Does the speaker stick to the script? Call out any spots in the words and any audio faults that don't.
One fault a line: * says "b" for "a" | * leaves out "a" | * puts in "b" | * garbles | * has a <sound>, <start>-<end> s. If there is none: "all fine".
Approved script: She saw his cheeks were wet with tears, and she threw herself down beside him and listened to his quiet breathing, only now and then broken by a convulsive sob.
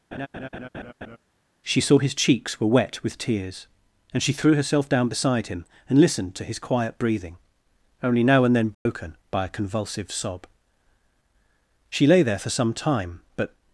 * has a laugh, 0.1-1.2 s
* has a dropout, 8.7-8.9 s
* puts in "She lay there for some time but"